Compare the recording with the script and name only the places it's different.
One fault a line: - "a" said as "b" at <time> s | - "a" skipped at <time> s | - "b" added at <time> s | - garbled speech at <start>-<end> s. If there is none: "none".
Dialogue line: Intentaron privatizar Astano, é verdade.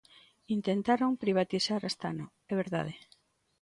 none